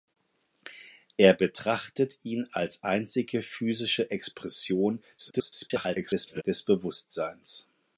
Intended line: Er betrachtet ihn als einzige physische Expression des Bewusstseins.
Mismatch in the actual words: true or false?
true